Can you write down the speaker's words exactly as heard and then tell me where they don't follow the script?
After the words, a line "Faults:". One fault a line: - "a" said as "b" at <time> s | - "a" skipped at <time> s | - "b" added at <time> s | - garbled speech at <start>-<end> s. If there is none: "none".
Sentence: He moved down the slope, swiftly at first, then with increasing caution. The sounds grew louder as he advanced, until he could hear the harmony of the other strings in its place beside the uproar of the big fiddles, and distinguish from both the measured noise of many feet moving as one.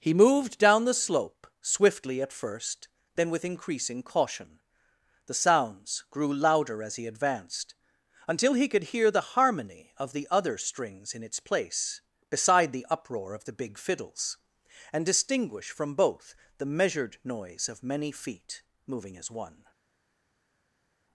He moved down the slope, swiftly at first, then with increasing caution. The sounds grew louder as he advanced, until he could hear the harmony of the other strings in its place beside the uproar of the big fiddles, and distinguish from both the measured noise of many feet moving as one.
Faults:
none